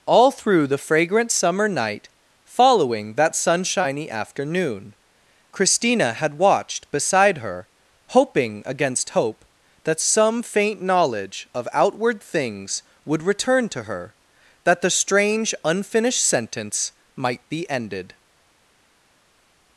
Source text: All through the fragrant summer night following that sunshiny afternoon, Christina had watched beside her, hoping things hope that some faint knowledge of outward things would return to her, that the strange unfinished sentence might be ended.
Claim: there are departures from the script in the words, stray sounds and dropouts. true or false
true